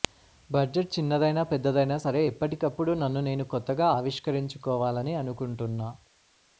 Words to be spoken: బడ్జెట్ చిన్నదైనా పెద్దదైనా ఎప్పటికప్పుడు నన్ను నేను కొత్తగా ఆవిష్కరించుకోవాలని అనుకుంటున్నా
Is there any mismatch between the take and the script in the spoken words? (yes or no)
yes